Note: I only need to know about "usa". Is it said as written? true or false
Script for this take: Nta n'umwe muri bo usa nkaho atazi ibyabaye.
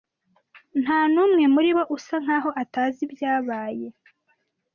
true